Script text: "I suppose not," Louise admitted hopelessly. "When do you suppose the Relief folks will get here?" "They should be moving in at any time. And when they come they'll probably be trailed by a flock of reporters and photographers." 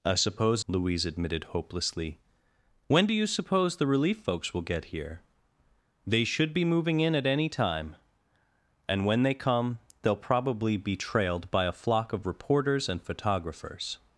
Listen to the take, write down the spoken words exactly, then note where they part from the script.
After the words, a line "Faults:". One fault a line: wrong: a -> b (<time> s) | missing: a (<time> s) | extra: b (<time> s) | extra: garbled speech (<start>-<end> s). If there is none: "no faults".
"I suppose," Louise admitted hopelessly. "When do you suppose the Relief folks will get here?" "They should be moving in at any time. And when they come they'll probably be trailed by a flock of reporters and photographers."
Faults:
missing: not (0.7 s)